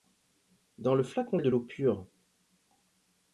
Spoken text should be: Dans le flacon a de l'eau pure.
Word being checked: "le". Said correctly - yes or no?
yes